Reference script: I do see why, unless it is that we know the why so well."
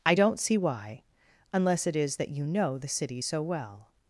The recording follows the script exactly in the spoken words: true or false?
false